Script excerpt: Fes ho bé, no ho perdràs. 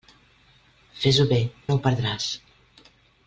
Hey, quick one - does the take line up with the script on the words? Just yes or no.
yes